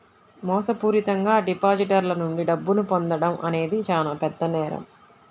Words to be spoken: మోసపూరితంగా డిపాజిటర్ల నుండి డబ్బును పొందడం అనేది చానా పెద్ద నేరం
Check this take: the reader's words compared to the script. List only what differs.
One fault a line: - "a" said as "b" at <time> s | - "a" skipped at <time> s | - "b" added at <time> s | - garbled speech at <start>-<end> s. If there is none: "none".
none